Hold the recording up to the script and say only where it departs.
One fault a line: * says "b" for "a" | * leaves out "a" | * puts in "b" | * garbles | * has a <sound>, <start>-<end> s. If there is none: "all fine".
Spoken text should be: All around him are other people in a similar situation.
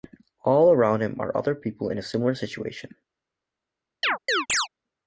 * has a chirp, 4.0-4.7 s